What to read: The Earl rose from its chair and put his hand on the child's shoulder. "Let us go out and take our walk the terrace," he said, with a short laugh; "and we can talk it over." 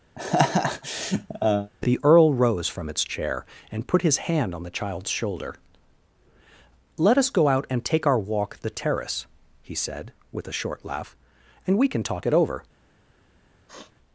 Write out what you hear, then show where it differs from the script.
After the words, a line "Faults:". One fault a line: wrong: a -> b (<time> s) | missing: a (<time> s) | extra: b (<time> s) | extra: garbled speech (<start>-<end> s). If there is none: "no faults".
The Earl rose from its chair and put his hand on the child's shoulder. "Let us go out and take our walk the terrace," he said, with a short laugh; "and we can talk it over."
Faults:
no faults